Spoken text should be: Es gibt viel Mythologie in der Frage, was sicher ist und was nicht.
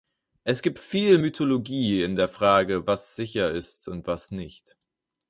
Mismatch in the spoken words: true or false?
false